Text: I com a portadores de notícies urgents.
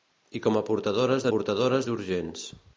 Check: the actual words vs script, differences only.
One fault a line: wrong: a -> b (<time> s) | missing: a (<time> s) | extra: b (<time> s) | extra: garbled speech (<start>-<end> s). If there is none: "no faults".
wrong: notícies -> portadores (1.3 s)